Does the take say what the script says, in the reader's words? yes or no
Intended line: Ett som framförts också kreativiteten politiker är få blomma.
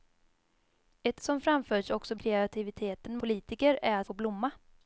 yes